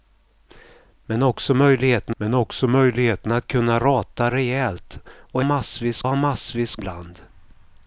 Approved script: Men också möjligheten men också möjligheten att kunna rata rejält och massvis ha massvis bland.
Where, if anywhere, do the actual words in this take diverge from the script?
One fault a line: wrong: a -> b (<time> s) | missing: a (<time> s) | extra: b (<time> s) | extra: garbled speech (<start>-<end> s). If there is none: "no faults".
no faults